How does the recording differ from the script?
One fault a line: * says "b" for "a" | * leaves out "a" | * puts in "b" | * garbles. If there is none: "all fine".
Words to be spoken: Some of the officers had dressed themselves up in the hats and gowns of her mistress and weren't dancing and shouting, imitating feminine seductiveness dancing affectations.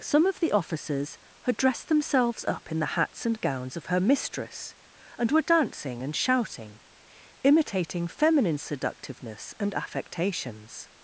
* says "were" for "weren't"
* says "and" for "dancing"